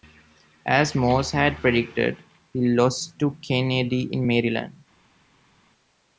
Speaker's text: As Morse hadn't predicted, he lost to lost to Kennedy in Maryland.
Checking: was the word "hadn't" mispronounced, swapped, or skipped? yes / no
yes